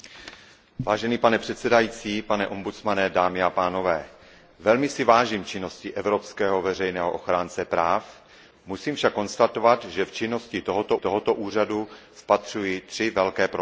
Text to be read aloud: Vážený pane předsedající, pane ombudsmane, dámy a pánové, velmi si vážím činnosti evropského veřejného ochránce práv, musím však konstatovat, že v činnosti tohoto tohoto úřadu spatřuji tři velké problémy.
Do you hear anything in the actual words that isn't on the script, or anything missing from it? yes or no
no